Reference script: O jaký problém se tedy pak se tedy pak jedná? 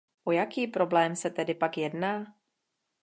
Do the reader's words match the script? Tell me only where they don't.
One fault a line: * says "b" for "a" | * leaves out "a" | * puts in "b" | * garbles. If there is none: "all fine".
* leaves out "se tedy pak"